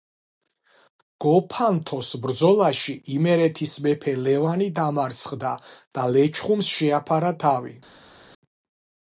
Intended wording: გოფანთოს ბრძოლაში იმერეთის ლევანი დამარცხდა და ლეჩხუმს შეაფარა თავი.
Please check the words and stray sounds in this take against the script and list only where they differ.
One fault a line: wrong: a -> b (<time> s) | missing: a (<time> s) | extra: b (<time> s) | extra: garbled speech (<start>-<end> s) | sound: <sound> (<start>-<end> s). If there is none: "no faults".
extra: მეფე (3.9 s)